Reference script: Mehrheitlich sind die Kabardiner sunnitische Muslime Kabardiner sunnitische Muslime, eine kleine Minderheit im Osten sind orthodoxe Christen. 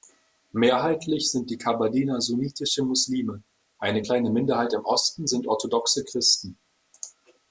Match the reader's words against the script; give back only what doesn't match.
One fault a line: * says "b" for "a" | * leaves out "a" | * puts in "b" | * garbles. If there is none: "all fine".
* leaves out "Kabardiner sunnitische Muslime"